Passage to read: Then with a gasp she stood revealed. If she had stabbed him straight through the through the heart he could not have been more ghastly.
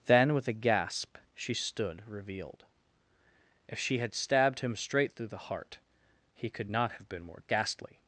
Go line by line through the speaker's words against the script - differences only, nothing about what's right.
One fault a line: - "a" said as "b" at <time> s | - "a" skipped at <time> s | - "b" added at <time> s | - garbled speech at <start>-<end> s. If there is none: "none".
- "through the" skipped at 5.4 s